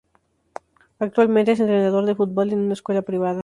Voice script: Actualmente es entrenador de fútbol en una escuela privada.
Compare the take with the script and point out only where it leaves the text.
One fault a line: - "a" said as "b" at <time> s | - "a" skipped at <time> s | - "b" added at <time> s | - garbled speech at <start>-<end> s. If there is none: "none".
none